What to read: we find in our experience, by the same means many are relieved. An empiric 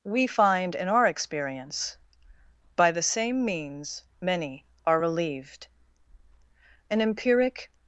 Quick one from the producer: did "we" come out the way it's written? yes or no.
yes